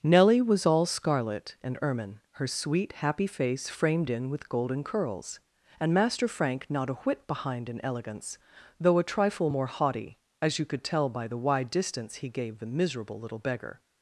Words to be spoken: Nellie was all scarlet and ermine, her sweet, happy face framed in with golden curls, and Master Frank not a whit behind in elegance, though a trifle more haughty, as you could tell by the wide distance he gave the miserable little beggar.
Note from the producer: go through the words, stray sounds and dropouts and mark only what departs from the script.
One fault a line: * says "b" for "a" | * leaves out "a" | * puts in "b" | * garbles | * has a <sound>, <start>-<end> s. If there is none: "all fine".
all fine